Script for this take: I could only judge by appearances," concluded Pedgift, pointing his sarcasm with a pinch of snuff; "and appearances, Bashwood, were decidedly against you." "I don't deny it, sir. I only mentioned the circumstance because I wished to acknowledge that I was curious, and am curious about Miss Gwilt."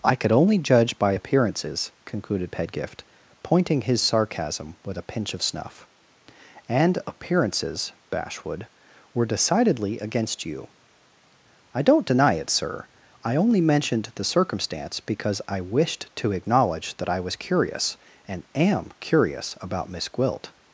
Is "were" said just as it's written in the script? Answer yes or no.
yes